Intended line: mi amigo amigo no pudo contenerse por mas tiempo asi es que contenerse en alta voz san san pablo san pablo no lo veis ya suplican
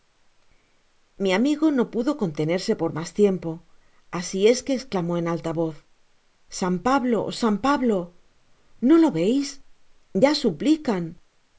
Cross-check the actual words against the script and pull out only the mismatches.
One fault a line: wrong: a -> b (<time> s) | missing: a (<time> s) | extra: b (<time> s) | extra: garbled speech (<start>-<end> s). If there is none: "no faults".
missing: amigo (1.6 s)
wrong: contenerse -> esclamó (4.8 s)
missing: san (6.8 s)